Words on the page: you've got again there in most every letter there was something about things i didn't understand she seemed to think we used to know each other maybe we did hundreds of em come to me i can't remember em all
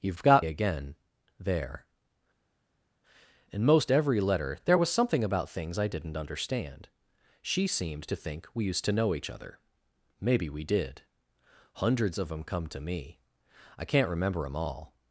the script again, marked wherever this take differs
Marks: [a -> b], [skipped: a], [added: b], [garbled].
you've got again there in most every letter there was something about things i didn't understand she seemed to think we used to know each other maybe we did hundreds of em come to me i can't remember em all